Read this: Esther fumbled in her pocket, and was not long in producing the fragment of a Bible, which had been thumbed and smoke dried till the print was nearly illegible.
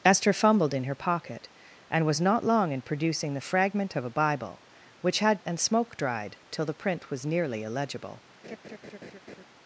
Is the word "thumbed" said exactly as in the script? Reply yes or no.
no